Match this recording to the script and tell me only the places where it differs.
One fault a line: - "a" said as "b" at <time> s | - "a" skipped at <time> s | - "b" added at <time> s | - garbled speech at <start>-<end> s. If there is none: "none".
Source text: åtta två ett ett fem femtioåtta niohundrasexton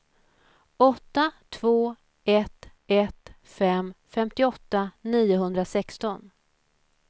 none